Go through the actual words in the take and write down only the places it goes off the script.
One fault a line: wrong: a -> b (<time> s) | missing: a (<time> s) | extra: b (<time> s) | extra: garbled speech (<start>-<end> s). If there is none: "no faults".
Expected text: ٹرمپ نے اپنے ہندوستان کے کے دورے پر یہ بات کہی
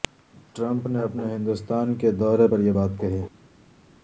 missing: کے (2.1 s)